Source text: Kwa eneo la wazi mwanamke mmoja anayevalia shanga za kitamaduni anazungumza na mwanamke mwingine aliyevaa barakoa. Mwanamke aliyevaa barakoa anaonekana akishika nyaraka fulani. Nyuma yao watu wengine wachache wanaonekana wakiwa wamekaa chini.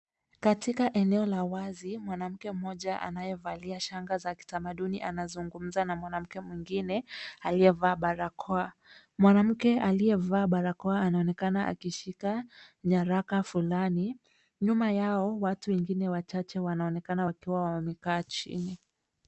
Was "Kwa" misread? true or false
true